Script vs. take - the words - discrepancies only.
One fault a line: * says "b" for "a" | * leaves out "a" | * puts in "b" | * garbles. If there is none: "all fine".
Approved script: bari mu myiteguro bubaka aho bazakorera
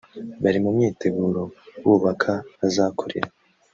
* leaves out "aho"